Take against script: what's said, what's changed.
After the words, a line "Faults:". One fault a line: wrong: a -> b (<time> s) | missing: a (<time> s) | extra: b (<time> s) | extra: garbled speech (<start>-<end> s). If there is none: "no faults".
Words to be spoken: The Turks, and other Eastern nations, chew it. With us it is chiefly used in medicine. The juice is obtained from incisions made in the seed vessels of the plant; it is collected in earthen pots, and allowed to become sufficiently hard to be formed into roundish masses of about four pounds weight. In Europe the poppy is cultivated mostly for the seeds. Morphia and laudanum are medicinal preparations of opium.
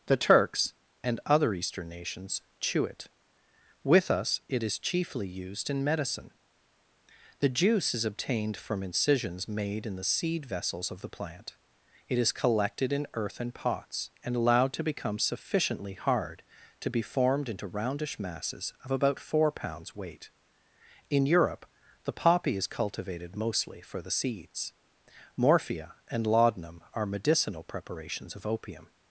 The Turks, and other Eastern nations, chew it. With us it is chiefly used in medicine. The juice is obtained from incisions made in the seed vessels of the plant; it is collected in earthen pots, and allowed to become sufficiently hard to be formed into roundish masses of about four pounds weight. In Europe the poppy is cultivated mostly for the seeds. Morphia and laudanum are medicinal preparations of opium.
Faults:
no faults